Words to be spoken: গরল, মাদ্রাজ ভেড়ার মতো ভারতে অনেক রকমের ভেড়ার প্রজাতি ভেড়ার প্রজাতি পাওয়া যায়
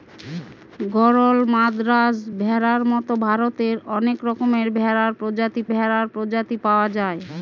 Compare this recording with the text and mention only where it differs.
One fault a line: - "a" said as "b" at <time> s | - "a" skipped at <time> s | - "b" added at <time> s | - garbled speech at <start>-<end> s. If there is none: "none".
none